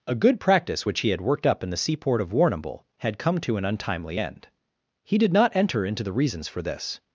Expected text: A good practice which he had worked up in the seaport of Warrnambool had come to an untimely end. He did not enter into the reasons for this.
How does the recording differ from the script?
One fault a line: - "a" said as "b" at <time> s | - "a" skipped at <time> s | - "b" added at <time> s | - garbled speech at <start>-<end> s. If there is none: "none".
none